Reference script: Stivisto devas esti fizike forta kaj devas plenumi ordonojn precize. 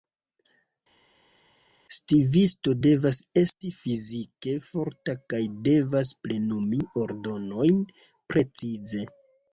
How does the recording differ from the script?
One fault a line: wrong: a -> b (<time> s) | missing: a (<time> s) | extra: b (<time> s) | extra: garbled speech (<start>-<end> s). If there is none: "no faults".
no faults